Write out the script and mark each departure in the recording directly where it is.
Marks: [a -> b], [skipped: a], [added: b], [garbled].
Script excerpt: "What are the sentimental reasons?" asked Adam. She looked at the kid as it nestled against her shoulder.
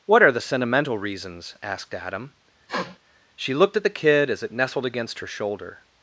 "What are the sentimental reasons?" asked Adam. She looked at the kid as it nestled against her shoulder.